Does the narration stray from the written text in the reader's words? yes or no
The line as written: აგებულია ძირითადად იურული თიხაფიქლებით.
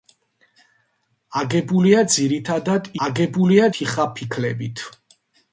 yes